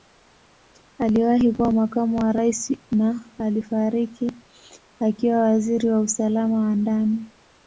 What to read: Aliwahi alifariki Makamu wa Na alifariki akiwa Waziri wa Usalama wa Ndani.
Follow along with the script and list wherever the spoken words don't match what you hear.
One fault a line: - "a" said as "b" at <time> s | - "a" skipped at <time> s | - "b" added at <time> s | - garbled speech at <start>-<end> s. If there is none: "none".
- "alifariki" said as "kuwa" at 1.5 s
- "Rais" added at 2.3 s